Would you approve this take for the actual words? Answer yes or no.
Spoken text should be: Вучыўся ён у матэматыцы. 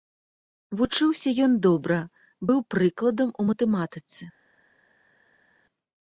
no